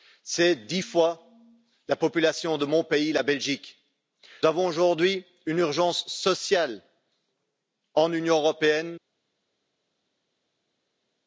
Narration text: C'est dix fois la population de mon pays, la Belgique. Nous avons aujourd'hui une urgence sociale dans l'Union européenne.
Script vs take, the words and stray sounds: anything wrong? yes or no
yes